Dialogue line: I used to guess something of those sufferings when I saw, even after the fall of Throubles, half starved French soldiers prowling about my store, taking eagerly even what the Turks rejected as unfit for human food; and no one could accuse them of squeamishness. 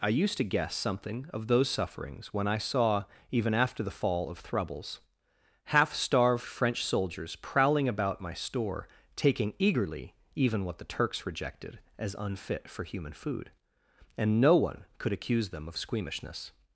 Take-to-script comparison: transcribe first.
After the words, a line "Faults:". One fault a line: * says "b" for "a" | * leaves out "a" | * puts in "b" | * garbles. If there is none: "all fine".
I used to guess something of those sufferings when I saw, even after the fall of Throubles, half starved French soldiers prowling about my store, taking eagerly even what the Turks rejected as unfit for human food; and no one could accuse them of squeamishness.
Faults:
all fine